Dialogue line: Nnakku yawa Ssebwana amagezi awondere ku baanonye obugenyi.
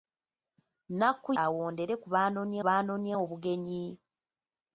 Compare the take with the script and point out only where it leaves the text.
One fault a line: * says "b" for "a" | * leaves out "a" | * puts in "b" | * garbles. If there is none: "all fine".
* leaves out "yawa Ssebwana amagezi"
* puts in "baanonye"